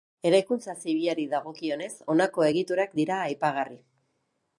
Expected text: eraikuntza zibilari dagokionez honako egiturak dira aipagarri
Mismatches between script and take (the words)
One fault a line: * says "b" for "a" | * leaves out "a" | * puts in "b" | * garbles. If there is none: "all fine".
all fine